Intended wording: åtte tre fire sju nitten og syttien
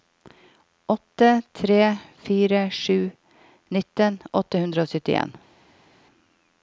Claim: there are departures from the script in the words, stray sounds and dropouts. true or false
true